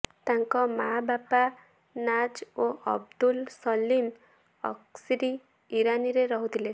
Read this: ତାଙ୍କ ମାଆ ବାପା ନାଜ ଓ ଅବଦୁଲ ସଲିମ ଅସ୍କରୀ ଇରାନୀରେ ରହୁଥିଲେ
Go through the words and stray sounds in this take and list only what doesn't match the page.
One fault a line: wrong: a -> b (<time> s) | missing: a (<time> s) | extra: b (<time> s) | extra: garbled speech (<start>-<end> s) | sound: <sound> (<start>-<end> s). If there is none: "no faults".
no faults